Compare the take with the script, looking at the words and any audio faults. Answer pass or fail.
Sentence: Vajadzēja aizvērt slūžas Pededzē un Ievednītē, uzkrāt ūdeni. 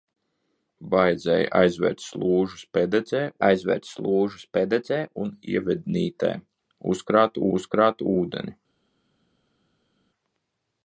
fail